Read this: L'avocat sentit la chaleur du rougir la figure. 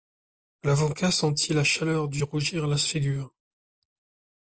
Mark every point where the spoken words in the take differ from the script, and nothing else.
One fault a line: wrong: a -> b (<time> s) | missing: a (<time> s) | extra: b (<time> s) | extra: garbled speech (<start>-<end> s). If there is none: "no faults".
no faults